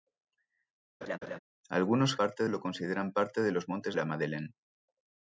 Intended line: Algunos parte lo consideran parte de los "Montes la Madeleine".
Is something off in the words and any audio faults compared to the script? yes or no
yes